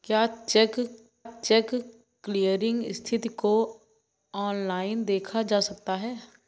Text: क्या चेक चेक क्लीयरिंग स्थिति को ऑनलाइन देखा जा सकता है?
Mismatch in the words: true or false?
false